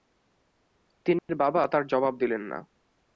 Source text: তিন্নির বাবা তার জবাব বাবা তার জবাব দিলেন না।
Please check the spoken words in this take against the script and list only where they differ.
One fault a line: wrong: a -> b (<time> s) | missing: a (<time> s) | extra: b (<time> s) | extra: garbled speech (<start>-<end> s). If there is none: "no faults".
missing: বাবা তার জবাব (2.1 s)